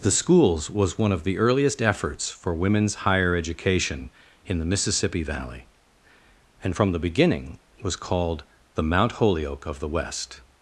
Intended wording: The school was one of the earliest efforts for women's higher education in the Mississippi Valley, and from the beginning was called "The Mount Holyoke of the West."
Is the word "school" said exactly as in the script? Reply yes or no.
no